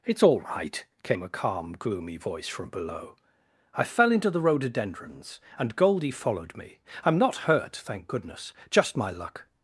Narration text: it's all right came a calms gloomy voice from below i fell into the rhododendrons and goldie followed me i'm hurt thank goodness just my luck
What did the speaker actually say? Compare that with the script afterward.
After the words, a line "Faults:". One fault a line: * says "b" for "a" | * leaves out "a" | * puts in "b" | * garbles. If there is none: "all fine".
it's all right came a calm gloomy voice from below i fell into the rhododendrons and goldie followed me i'm not hurt thank goodness just my luck
Faults:
* says "calm" for "calms"
* puts in "not"